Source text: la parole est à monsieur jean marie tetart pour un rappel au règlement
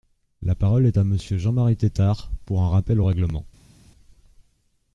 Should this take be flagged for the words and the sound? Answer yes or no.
no